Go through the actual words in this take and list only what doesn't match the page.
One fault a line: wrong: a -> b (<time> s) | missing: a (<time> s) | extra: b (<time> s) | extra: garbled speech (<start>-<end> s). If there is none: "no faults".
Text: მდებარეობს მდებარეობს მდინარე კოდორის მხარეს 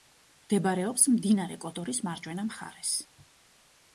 missing: მდებარეობს (1.0 s)
extra: მარჯვენა (2.1 s)